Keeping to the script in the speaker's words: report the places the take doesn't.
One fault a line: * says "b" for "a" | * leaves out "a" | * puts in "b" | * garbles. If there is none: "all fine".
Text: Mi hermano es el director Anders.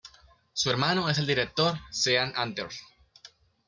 * says "Su" for "Mi"
* puts in "Sean"